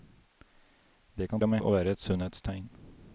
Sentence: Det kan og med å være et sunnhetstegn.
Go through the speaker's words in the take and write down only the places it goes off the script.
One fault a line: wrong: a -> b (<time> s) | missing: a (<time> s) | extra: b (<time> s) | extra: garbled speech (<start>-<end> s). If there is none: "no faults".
no faults